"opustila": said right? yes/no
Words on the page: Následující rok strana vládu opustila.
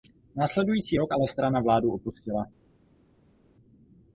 yes